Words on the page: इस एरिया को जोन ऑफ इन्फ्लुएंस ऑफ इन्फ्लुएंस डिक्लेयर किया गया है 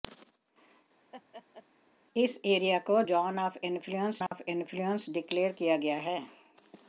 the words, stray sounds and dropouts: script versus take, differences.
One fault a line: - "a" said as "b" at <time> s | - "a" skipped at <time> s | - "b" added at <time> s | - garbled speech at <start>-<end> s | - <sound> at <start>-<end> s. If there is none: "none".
- laugh at 1.1-1.7 s
- dropout at 4.3-4.3 s